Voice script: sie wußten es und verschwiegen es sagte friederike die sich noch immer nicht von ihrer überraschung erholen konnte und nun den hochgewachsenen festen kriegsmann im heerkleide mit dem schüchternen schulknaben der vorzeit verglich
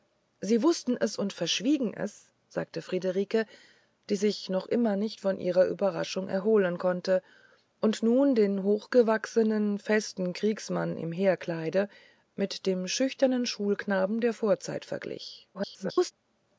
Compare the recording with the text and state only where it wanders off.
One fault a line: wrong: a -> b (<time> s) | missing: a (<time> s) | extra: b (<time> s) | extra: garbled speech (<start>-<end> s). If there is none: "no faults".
extra: garbled speech (15.5-16.1 s)